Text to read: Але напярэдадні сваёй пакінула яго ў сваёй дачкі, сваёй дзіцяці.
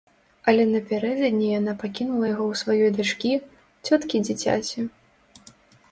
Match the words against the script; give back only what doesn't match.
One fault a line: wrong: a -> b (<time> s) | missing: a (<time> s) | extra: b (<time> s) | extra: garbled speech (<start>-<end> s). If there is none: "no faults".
wrong: сваёй -> яна (1.6 s)
wrong: сваёй -> цёткі (3.9 s)